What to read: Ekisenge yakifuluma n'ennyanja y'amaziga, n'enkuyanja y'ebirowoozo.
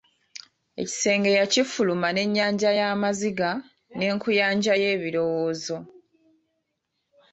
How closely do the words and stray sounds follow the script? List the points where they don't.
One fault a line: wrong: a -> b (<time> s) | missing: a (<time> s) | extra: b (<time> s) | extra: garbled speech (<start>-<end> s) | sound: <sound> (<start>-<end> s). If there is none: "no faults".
no faults